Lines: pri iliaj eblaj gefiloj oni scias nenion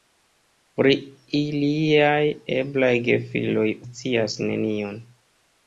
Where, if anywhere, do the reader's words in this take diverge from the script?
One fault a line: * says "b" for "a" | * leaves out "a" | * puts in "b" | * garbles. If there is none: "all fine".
* leaves out "oni"